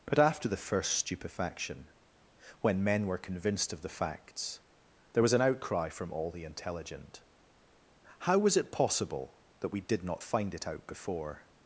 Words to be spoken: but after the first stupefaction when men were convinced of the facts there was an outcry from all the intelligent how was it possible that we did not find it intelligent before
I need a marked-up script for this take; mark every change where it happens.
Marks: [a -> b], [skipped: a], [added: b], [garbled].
but after the first stupefaction when men were convinced of the facts there was an outcry from all the intelligent how was it possible that we did not find it [intelligent -> out] before